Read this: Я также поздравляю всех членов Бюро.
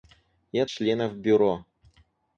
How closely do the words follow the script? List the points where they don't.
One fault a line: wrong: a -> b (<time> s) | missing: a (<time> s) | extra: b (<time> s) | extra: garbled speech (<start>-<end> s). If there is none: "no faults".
missing: также поздравляю всех (0.7 s)